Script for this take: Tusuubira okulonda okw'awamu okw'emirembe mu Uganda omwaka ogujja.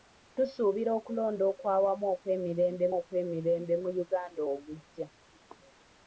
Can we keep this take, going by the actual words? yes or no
no